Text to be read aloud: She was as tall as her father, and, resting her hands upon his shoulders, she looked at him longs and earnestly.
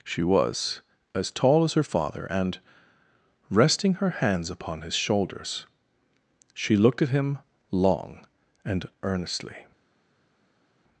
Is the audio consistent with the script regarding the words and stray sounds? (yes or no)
no